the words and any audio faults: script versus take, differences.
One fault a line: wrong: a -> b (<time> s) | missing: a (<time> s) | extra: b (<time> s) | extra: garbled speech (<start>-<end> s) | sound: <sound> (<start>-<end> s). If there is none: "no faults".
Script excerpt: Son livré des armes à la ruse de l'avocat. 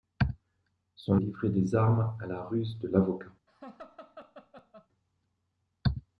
sound: laugh (3.5-4.9 s)